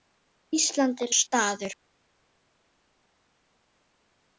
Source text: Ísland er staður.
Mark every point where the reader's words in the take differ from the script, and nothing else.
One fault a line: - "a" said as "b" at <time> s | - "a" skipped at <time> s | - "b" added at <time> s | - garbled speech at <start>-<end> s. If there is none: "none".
none